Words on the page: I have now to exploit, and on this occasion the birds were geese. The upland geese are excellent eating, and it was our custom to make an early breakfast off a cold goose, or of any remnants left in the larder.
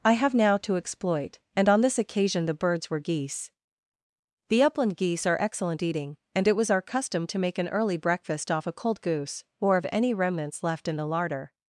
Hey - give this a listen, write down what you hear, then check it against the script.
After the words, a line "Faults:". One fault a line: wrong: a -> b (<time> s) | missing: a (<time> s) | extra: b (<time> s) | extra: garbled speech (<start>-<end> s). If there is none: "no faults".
I have now to exploit, and on this occasion the birds were geese. The upland geese are excellent eating, and it was our custom to make an early breakfast off a cold goose, or of any remnants left in the larder.
Faults:
no faults